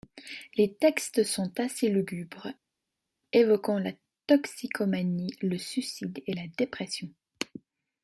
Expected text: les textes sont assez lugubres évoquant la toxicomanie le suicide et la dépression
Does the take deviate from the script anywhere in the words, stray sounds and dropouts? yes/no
no